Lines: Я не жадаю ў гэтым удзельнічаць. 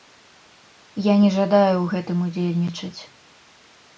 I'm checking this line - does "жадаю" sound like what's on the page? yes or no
yes